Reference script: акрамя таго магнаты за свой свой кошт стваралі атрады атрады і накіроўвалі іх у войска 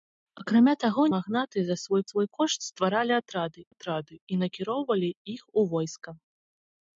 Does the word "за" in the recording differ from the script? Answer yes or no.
no